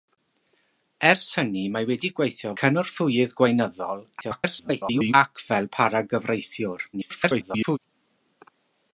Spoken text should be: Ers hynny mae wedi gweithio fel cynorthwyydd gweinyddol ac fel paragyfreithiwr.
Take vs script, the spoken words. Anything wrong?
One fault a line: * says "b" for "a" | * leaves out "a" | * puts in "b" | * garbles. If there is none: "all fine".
* leaves out "fel"
* garbles
* garbles